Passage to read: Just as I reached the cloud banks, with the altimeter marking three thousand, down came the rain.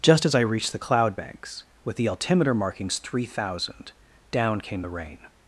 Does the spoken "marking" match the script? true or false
false